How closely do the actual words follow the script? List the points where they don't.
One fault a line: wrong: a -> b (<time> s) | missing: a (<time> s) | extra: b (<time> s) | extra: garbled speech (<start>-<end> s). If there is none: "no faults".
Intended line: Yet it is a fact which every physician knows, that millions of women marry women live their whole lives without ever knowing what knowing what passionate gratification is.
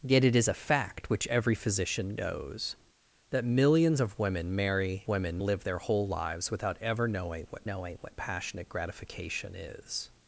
no faults